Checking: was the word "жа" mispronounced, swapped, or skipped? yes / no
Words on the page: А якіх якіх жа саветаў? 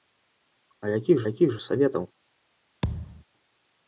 no